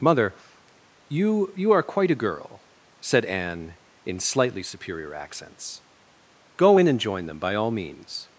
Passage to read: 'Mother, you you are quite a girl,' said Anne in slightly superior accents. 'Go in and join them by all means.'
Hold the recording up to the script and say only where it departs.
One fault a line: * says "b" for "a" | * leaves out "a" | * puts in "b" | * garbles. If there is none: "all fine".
all fine